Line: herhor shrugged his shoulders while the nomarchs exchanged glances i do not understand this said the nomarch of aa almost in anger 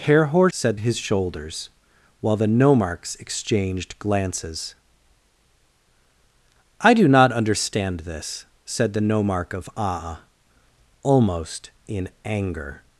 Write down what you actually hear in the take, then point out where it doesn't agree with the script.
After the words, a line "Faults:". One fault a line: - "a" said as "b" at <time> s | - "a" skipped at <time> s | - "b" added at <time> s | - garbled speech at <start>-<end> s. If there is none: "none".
herhor said his shoulders while the nomarchs exchanged glances i do not understand this said the nomarch of aa almost in anger
Faults:
- "shrugged" said as "said" at 0.5 s